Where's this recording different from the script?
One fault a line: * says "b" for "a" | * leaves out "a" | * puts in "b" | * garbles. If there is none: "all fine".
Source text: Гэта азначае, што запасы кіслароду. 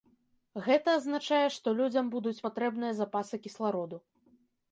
* puts in "людзям будуць патрэбныя"